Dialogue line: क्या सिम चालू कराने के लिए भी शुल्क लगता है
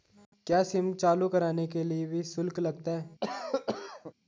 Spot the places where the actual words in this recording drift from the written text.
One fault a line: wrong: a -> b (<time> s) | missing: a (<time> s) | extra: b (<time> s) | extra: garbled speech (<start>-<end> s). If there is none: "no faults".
no faults